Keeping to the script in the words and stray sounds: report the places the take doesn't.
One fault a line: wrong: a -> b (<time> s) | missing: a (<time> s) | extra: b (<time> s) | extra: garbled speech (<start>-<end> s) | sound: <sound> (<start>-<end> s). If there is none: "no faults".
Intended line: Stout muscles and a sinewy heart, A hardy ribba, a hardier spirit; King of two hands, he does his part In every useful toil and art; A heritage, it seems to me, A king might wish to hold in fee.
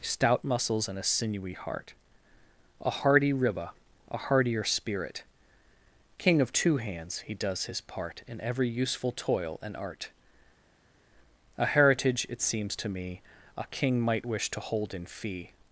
no faults